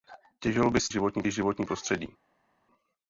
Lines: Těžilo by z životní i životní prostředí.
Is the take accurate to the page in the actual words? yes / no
yes